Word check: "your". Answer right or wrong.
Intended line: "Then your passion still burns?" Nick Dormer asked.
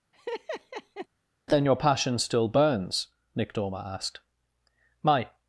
right